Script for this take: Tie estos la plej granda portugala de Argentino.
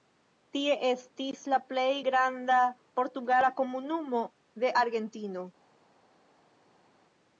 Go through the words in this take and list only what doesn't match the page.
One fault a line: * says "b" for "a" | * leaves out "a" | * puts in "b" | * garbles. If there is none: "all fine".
* says "estis" for "estos"
* puts in "komunumo"